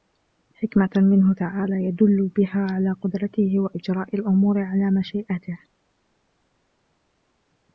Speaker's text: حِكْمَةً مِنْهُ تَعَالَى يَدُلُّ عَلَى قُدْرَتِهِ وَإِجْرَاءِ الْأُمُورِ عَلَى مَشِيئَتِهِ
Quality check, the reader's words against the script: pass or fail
fail